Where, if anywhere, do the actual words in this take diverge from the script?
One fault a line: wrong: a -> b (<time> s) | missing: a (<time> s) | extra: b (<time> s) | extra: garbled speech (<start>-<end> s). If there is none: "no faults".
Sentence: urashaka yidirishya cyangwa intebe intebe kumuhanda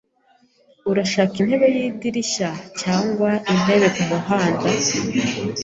extra: intebe (1.4 s)
missing: intebe (3.9 s)